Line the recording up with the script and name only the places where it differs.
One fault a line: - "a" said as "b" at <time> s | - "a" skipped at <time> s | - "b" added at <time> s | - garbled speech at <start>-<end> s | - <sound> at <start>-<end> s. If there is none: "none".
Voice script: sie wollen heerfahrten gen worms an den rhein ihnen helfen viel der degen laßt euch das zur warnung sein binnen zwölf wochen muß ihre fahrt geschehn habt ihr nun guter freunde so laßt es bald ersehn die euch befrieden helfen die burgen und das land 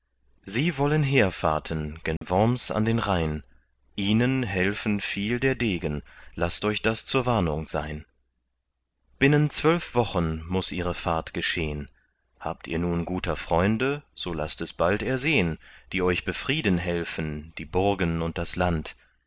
- dropout at 2.2-2.2 s